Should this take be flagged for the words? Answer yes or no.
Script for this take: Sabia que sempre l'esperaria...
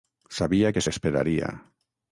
yes